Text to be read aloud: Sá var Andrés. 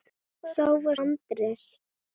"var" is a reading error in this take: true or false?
false